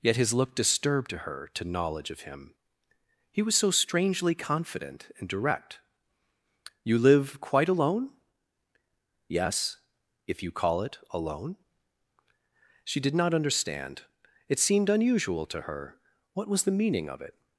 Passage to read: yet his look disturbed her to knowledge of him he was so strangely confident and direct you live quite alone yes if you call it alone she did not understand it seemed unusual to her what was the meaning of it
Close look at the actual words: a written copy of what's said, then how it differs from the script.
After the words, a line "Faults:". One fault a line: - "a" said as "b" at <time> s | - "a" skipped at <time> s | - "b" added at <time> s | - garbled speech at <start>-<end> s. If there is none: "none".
yet his look disturbed to her to knowledge of him he was so strangely confident and direct you live quite alone yes if you call it alone she did not understand it seemed unusual to her what was the meaning of it
Faults:
- "to" added at 1.1 s